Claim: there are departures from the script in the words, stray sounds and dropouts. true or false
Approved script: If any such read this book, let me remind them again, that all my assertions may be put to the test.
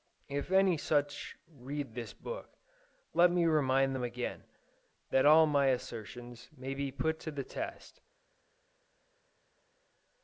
false